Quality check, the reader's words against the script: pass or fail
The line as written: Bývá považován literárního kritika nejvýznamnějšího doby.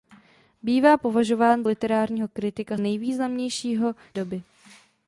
pass